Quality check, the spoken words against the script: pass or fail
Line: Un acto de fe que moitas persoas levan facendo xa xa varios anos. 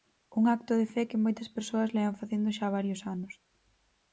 fail